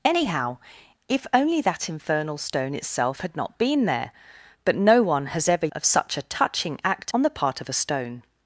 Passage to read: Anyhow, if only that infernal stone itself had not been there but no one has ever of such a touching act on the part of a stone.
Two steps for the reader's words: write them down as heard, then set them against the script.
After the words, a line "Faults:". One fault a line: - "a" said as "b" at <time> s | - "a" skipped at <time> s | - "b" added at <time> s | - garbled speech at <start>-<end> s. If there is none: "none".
Anyhow, if only that infernal stone itself had not been there but no one has ever of such a touching act on the part of a stone.
Faults:
none